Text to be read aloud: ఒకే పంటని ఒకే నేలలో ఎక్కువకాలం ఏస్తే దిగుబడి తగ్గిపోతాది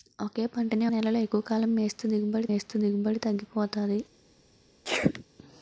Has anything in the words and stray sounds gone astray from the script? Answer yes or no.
yes